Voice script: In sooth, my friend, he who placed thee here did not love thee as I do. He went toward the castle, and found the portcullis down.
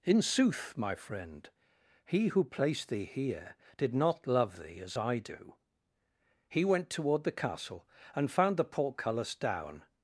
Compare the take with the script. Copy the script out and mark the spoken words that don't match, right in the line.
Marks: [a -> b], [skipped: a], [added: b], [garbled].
In sooth, my friend, he who placed thee here did not love thee as I do. He went toward the castle, and found the portcullis down.